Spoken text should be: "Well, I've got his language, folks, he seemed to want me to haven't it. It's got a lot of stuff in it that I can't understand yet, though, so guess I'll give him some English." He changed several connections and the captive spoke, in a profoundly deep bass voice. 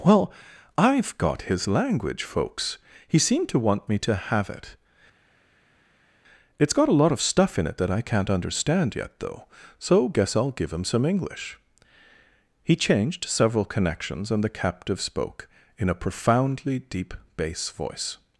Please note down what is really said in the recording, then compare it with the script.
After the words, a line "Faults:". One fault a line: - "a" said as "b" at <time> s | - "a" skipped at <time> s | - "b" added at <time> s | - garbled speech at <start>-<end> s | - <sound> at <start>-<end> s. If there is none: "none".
"Well, I've got his language, folks, he seemed to want me to have it. It's got a lot of stuff in it that I can't understand yet, though, so guess I'll give him some English." He changed several connections and the captive spoke, in a profoundly deep bass voice.
Faults:
- "haven't" said as "have" at 4.2 s